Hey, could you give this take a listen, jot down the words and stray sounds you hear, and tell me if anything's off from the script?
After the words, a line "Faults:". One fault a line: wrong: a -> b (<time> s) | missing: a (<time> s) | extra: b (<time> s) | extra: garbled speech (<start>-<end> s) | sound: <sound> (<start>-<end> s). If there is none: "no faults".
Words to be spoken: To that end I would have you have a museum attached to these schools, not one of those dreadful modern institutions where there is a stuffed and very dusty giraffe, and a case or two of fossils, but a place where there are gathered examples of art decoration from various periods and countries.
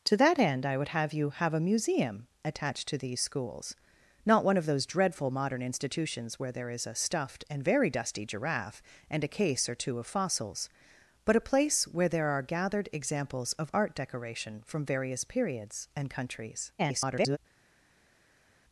To that end I would have you have a museum attached to these schools, not one of those dreadful modern institutions where there is a stuffed and very dusty giraffe, and a case or two of fossils, but a place where there are gathered examples of art decoration from various periods and countries. [garbled]
Faults:
extra: garbled speech (16.8-17.4 s)